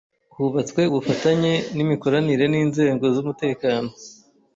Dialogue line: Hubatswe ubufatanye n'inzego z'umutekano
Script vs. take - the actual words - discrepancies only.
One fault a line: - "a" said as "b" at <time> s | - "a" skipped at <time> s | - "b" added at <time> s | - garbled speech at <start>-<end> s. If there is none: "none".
- "n'imikoranire" added at 1.8 s